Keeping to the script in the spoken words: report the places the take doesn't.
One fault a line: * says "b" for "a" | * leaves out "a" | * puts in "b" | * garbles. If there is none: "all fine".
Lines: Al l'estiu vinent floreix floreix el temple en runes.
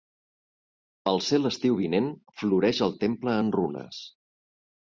* puts in "ser"
* leaves out "floreix"